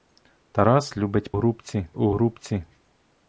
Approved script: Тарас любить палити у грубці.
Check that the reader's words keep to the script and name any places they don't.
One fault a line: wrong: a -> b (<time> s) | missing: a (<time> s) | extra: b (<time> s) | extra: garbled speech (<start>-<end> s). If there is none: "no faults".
wrong: палити -> грубці (1.3 s)